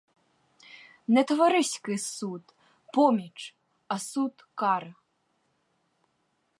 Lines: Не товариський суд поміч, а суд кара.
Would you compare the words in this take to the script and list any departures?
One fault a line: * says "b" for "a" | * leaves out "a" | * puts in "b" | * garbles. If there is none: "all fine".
all fine